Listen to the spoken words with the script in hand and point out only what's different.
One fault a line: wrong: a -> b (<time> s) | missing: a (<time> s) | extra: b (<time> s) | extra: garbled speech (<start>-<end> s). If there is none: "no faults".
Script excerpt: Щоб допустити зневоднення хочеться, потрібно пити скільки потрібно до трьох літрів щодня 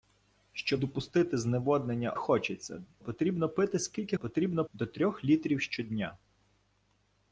no faults